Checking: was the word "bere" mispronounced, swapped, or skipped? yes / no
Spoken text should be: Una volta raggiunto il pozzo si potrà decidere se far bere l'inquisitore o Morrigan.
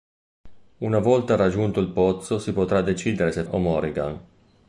yes